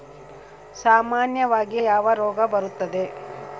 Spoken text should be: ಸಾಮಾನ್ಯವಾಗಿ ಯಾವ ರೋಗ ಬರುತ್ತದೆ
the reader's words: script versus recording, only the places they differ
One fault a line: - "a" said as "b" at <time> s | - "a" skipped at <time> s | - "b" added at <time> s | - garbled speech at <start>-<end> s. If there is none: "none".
none